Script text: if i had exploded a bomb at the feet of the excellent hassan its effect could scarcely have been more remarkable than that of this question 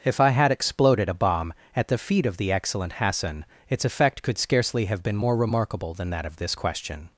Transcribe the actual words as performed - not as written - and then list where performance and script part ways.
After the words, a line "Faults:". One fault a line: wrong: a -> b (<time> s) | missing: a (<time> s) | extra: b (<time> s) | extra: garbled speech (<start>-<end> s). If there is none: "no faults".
if i had exploded a bomb at the feet of the excellent hassan its effect could scarcely have been more remarkable than that of this question
Faults:
no faults